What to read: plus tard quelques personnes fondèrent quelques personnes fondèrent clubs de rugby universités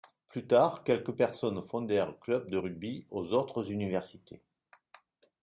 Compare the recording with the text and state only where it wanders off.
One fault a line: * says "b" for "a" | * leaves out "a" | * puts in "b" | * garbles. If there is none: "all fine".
* leaves out "quelques personnes fondèrent"
* puts in "aux autres"